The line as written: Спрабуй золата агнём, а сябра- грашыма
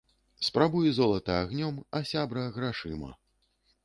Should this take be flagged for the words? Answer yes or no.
no